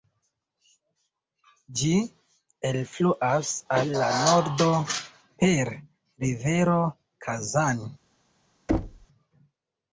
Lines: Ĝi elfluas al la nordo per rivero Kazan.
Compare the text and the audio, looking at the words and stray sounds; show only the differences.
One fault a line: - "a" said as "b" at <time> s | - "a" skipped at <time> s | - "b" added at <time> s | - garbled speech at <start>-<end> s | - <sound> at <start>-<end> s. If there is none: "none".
- thud at 8.7-9.1 s